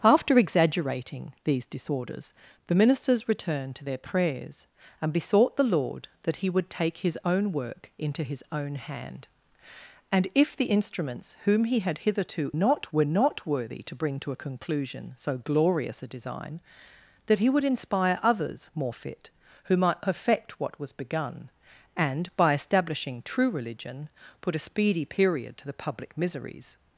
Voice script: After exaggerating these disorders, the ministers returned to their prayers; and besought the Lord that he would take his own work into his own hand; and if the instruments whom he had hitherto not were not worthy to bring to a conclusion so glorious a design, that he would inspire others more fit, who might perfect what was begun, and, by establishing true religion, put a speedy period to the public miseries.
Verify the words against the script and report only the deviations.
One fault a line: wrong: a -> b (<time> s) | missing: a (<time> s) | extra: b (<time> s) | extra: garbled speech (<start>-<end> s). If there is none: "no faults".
no faults